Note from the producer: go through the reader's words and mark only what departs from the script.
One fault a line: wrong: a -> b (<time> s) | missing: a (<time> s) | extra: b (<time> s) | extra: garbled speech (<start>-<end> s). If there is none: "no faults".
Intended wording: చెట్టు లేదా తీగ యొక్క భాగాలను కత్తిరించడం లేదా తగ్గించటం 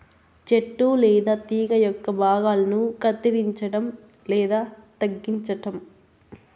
no faults